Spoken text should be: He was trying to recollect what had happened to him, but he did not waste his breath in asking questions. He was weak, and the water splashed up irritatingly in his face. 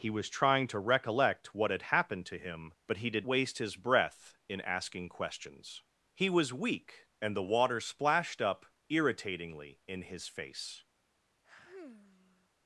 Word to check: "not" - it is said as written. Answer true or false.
false